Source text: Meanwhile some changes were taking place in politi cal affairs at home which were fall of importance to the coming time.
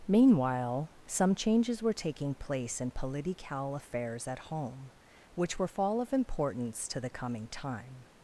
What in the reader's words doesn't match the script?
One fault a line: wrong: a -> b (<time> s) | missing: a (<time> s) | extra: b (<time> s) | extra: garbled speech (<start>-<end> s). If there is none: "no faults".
no faults